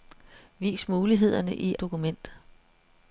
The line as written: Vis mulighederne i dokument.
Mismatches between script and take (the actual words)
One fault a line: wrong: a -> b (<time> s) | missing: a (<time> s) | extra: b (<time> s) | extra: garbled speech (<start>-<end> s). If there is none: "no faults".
no faults